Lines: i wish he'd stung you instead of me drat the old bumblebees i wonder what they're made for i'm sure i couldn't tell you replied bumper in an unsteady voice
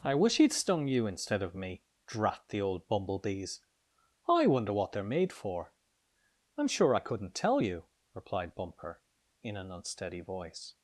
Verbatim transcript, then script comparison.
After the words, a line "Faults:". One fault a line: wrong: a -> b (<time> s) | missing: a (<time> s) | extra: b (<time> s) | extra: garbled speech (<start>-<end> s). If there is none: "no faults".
i wish he'd stung you instead of me drat the old bumblebees i wonder what they're made for i'm sure i couldn't tell you replied bumper in an unsteady voice
Faults:
no faults